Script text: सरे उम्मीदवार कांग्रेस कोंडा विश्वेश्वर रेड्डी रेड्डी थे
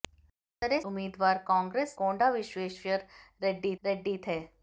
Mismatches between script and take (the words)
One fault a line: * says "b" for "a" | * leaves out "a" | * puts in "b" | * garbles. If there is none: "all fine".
all fine